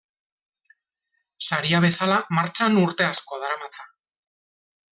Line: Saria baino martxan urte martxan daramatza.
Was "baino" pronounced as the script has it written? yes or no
no